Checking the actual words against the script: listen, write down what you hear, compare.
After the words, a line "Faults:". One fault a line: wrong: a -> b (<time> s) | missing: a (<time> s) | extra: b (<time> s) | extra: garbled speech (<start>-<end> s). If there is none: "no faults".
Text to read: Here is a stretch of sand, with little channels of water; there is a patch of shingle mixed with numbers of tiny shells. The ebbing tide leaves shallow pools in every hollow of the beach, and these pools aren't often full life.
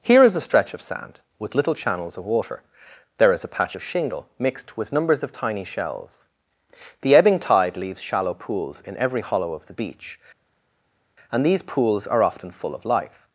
Here is a stretch of sand, with little channels of water; there is a patch of shingle mixed with numbers of tiny shells. The ebbing tide leaves shallow pools in every hollow of the beach, and these pools are often full of life.
Faults:
wrong: aren't -> are (12.1 s)
extra: of (12.7 s)